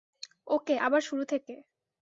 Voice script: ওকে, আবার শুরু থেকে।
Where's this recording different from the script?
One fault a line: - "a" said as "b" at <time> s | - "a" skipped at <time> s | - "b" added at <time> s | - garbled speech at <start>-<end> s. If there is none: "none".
none